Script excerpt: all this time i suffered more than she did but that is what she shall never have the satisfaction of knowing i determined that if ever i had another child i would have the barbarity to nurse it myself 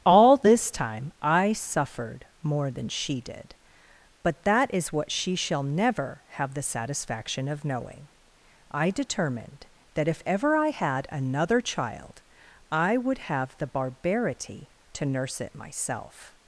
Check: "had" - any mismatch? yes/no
no